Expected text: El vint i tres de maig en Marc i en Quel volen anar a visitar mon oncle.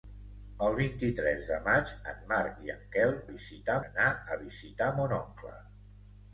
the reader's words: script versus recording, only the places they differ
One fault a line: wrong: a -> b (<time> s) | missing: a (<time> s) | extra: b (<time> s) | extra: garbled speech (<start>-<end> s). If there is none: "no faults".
wrong: volen -> visitar (3.3 s)